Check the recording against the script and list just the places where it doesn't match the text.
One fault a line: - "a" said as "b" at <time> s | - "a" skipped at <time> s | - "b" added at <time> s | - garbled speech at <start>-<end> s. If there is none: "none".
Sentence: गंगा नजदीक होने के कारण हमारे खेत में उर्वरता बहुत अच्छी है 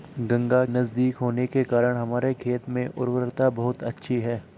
none